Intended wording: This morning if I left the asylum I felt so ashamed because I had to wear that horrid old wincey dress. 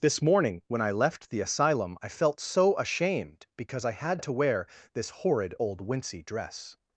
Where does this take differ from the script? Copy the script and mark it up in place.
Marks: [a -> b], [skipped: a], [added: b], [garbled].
This morning [if -> when] I left the asylum I felt so ashamed because I had to wear [that -> this] horrid old wincey dress.